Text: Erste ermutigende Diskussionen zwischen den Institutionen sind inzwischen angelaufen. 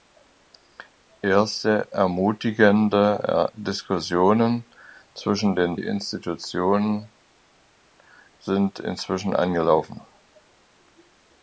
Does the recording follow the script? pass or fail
pass